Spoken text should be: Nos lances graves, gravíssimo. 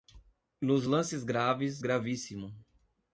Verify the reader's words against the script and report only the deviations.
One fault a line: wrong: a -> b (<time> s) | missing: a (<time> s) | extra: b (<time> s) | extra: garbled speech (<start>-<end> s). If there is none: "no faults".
no faults